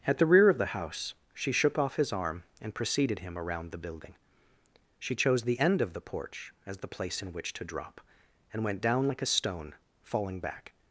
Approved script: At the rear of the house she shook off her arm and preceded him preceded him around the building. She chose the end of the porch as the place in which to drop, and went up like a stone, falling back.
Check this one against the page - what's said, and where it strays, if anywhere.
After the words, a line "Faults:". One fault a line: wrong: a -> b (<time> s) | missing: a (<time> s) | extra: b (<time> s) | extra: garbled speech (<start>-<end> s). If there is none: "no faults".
At the rear of the house she shook off his arm and preceded him around the building. She chose the end of the porch as the place in which to drop, and went down like a stone, falling back.
Faults:
wrong: her -> his (1.9 s)
missing: preceded him (3.4 s)
wrong: up -> down (8.8 s)